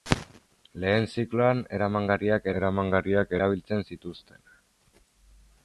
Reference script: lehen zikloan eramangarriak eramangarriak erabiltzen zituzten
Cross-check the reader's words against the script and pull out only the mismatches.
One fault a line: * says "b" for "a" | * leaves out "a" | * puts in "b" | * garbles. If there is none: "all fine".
all fine